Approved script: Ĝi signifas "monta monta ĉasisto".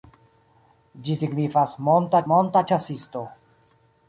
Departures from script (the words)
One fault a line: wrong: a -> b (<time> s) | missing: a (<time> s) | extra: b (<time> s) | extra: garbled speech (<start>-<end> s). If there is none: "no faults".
no faults